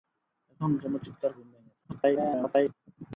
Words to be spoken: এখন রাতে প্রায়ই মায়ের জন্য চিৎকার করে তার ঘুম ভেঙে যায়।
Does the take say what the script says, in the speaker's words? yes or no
no